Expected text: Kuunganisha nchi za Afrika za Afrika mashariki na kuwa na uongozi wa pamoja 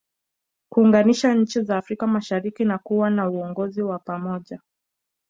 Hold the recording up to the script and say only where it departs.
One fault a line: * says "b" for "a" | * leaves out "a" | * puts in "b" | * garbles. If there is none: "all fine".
* leaves out "za Afrika"